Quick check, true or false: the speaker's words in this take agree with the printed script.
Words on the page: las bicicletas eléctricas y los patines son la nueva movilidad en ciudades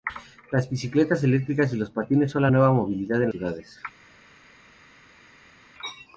true